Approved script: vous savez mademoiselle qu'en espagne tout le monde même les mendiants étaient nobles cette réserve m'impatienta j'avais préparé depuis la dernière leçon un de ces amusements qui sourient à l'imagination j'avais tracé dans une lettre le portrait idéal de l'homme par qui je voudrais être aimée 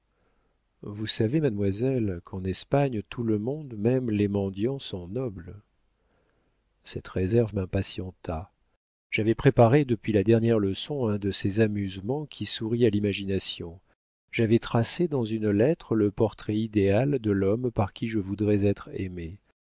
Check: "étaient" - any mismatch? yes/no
yes